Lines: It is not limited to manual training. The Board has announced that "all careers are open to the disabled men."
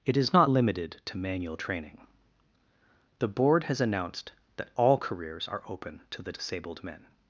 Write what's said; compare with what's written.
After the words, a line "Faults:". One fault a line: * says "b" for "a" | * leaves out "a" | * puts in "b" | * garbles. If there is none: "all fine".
It is not limited to manual training. The Board has announced that "all careers are open to the disabled men."
Faults:
all fine